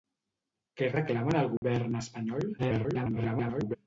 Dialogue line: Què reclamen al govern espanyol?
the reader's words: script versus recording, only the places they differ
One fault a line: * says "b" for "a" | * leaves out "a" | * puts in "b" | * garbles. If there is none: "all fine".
* garbles